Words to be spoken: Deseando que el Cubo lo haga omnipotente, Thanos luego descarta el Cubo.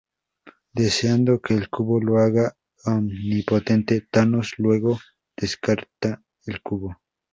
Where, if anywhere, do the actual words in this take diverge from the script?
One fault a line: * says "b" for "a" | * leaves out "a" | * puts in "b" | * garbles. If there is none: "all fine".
all fine